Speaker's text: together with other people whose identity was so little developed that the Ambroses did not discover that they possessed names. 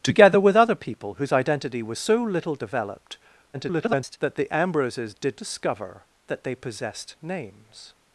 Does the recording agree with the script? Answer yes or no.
no